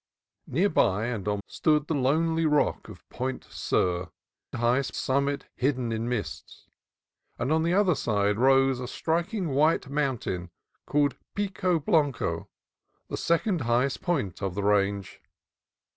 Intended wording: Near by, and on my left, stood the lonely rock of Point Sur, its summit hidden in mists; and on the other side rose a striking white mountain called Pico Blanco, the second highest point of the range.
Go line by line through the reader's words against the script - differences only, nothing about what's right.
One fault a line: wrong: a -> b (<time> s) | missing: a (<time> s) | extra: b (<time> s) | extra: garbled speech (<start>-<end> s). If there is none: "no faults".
missing: my left (1.4 s)
wrong: its -> highest (4.5 s)